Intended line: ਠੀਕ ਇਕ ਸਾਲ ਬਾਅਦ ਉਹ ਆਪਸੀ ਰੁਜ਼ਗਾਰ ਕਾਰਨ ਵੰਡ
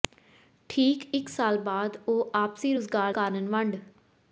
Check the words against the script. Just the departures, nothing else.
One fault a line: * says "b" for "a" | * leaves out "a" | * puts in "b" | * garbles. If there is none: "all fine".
all fine